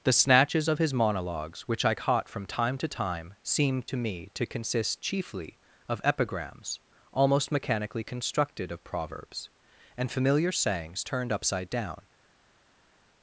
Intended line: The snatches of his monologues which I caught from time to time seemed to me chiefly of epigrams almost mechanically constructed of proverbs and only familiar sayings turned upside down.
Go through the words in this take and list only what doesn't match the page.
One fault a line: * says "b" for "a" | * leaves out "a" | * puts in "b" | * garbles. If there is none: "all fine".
* puts in "to consist"
* leaves out "only"